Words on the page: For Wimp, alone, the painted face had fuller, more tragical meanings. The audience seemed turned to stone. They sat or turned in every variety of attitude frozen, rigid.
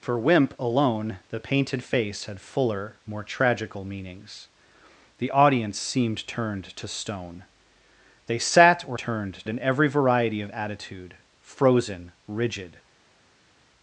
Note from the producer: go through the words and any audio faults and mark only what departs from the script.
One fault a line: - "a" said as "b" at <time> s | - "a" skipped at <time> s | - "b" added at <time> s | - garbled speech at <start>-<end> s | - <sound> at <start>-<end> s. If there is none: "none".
none